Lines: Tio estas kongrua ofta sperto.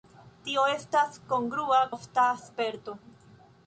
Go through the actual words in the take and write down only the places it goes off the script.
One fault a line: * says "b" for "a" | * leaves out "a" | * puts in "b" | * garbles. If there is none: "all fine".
all fine